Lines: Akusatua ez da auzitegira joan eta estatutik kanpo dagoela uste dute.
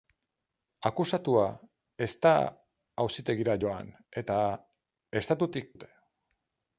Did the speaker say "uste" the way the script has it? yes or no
no